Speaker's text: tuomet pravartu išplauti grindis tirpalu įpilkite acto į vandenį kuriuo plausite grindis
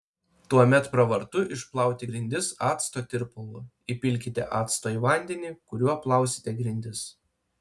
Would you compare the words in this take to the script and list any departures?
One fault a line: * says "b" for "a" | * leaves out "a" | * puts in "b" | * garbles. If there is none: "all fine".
* puts in "acto"